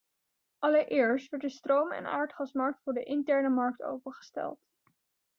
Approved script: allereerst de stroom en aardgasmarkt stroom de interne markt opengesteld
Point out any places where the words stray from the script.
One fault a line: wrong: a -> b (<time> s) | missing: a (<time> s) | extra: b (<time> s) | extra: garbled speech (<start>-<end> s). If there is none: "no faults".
extra: werd (1.3 s)
wrong: stroom -> voor (2.8 s)